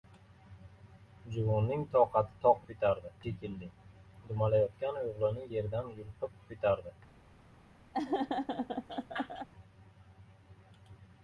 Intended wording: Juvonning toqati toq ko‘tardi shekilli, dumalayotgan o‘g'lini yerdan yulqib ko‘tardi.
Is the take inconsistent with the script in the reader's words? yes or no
no